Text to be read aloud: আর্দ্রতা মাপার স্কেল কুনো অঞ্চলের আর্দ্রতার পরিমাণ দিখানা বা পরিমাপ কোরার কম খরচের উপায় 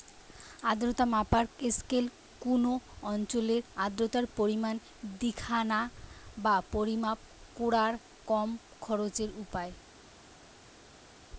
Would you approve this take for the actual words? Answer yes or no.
yes